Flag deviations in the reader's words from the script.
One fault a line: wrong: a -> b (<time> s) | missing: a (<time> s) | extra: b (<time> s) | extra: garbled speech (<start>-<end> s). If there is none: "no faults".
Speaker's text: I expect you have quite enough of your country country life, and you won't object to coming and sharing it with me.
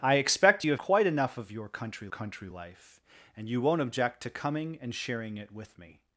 no faults